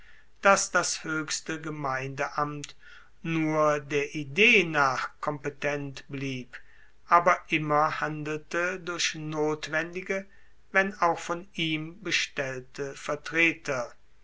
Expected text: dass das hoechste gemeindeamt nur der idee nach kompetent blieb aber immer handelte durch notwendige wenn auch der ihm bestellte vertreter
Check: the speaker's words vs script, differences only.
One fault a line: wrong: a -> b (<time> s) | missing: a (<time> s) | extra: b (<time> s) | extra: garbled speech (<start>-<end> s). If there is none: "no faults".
wrong: der -> von (11.2 s)